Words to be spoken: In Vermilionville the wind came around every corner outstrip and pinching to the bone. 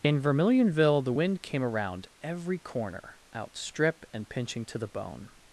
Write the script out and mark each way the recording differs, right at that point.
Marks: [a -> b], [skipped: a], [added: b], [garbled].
In Vermilionville the wind came around every corner outstrip and pinching to the bone.